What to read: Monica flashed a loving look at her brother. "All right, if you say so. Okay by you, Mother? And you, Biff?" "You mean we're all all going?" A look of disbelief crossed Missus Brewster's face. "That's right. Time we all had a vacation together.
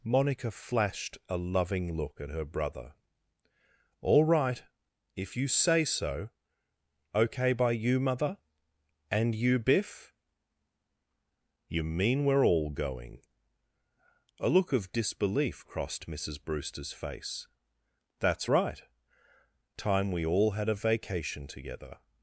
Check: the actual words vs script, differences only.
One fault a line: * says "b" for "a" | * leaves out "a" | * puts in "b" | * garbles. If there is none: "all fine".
* leaves out "all"